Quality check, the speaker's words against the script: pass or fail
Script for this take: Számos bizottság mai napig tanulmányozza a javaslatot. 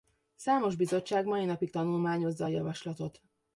pass